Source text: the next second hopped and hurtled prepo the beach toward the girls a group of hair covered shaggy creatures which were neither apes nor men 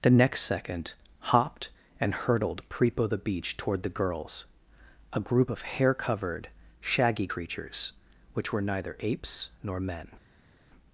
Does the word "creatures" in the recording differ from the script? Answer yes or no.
no